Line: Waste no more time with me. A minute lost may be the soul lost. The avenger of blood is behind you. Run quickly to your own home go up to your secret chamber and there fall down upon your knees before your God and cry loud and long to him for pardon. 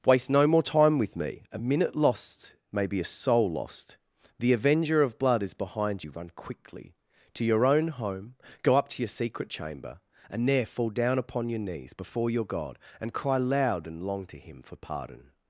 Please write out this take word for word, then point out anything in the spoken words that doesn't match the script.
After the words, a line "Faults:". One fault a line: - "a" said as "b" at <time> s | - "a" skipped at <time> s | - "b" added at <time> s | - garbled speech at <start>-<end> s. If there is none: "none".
Waste no more time with me. A minute lost may be a soul lost. The avenger of blood is behind you. Run quickly to your own home go up to your secret chamber and there fall down upon your knees before your God and cry loud and long to him for pardon.
Faults:
- "the" said as "a" at 3.0 s